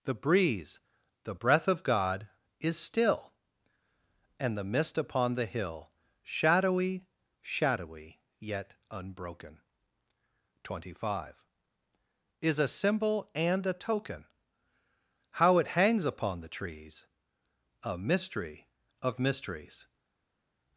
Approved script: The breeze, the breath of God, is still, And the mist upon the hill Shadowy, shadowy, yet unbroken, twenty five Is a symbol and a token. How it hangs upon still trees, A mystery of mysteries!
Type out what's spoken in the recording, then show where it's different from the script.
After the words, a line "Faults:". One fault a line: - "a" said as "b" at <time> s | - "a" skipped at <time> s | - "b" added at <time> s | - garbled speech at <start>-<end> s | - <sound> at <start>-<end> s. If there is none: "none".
The breeze, the breath of God, is still, And the mist upon the hill Shadowy, shadowy, yet unbroken, twenty five Is a symbol and a token. How it hangs upon the trees, A mystery of mysteries!
Faults:
- "still" said as "the" at 16.4 s